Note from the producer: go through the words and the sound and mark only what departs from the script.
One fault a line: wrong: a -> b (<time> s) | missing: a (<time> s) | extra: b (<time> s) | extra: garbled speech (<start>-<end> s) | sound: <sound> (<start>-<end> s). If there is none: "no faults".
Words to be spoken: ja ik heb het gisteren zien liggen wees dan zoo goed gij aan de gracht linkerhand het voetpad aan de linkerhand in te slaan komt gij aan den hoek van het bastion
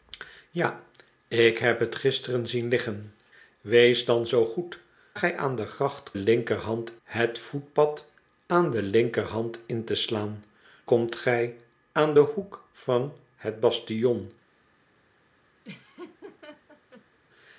sound: laugh (15.6-17.2 s)